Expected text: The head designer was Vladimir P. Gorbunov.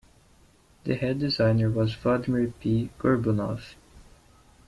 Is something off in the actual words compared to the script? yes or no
no